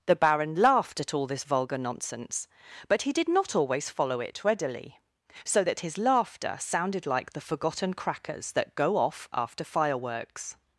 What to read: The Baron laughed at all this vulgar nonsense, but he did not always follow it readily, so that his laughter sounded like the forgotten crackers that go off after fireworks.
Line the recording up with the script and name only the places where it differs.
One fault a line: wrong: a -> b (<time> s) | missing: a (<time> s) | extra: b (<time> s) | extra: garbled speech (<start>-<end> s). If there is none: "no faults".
no faults